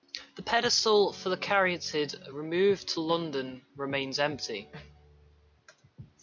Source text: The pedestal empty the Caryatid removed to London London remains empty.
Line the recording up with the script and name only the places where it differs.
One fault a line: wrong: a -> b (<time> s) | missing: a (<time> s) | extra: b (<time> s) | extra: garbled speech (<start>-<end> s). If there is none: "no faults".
wrong: empty -> for (1.1 s)
missing: London (3.6 s)